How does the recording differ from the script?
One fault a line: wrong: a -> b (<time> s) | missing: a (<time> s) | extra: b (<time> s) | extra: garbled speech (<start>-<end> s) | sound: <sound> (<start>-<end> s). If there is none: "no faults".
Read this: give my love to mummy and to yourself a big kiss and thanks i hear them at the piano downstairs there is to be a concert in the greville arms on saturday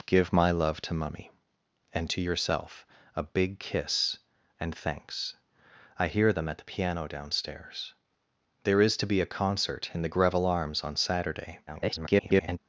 extra: garbled speech (11.7-12.6 s)